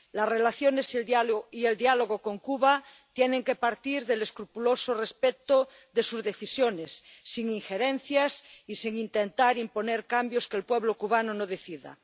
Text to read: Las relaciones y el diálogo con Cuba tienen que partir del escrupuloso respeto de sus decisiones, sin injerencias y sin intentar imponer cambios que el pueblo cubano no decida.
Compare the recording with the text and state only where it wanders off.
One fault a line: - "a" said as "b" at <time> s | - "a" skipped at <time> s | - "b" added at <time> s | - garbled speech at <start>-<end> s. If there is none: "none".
none